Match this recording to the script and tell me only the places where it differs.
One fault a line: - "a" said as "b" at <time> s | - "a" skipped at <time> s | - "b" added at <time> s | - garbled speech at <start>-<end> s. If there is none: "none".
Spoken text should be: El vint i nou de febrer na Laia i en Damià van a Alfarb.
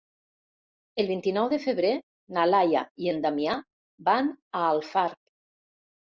none